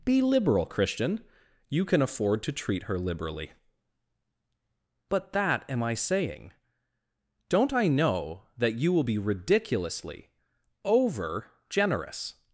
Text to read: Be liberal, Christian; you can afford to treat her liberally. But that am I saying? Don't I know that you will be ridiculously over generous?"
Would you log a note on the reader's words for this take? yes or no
no